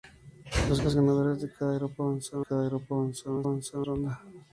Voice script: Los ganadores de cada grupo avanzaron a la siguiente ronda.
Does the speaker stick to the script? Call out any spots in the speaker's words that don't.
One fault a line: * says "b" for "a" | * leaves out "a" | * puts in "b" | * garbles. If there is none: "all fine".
* puts in "los"
* puts in "cada grupo avanzaron"
* says "avanzaron" for "siguiente"